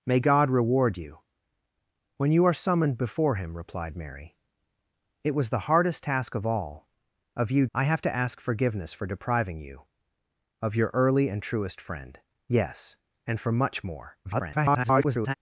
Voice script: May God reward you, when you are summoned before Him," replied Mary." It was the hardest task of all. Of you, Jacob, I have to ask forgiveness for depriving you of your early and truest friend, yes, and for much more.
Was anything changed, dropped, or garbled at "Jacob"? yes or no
yes